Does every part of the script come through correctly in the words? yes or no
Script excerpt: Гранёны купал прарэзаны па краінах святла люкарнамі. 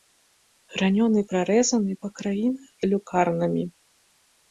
no